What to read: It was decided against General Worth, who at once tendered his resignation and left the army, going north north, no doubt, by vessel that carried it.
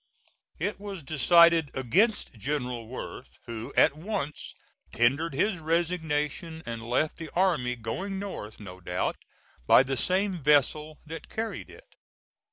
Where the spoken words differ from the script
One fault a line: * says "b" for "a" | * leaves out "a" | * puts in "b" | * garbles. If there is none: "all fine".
* leaves out "north"
* puts in "the same"